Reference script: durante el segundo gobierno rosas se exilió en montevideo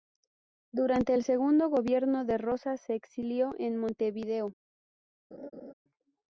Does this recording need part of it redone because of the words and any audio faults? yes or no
yes